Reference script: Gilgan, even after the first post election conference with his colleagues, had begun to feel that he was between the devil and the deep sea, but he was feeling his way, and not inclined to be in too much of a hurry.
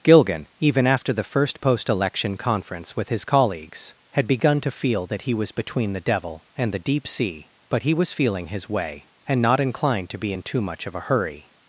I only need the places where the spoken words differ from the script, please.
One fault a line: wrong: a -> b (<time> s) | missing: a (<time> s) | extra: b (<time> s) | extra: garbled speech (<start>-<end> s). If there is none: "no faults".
no faults